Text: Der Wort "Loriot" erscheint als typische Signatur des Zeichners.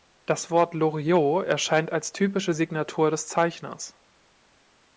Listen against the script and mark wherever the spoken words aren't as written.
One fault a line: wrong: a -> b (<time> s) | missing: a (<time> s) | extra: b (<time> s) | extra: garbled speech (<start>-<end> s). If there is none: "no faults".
wrong: Der -> Das (0.2 s)